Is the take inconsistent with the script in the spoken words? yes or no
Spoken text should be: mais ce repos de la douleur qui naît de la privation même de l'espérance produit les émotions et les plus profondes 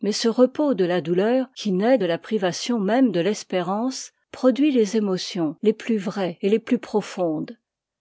yes